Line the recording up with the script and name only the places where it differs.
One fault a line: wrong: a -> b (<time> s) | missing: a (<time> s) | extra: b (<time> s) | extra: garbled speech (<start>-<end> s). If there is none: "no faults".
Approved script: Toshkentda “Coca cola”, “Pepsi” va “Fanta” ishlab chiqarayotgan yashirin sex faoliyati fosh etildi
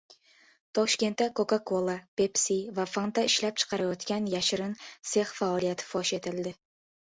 no faults